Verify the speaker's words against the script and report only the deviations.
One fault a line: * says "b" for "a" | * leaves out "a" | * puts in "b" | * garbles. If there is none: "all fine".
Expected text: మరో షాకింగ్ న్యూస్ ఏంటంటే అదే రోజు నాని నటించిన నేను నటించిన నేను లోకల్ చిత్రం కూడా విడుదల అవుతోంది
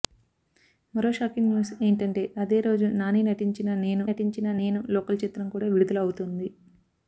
all fine